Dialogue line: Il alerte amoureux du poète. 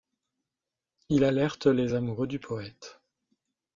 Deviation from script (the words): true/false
true